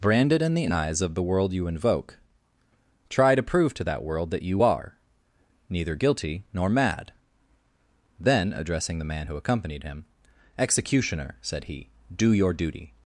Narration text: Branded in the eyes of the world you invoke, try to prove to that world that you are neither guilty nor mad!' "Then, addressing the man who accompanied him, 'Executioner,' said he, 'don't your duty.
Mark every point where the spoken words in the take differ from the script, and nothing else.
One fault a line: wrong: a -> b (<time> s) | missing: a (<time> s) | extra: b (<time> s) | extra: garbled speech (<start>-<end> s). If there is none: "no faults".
wrong: don't -> do (12.1 s)